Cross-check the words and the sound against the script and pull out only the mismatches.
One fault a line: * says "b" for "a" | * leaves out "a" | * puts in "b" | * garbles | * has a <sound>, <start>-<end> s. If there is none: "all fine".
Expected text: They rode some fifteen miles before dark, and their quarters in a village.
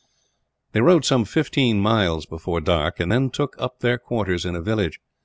* puts in "then took up"